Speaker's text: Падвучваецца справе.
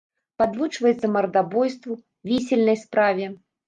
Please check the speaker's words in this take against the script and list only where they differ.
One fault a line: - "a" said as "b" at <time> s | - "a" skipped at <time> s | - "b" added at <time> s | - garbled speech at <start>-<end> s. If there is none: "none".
- "мардабойству вісельнай" added at 1.2 s